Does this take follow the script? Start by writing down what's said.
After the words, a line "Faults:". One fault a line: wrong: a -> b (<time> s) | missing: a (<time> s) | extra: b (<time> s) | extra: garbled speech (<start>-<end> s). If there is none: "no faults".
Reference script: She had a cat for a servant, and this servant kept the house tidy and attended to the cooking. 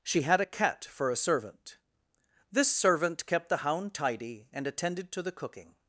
She had a cat for a servant, this servant kept the hound tidy and attended to the cooking.
Faults:
missing: and (1.8 s)
wrong: house -> hound (3.6 s)